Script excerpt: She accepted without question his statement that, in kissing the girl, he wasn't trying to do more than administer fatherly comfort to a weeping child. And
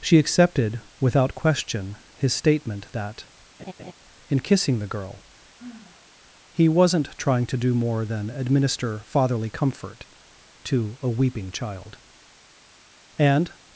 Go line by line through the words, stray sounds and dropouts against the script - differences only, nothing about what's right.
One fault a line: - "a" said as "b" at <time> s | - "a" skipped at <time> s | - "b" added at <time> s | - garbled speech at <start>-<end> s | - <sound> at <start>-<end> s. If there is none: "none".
- laugh at 3.6-3.9 s
- sigh at 5.6-6.1 s